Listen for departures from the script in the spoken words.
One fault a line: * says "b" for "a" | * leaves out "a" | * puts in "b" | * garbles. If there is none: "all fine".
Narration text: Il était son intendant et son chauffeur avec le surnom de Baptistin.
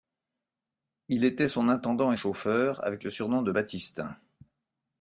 * leaves out "son"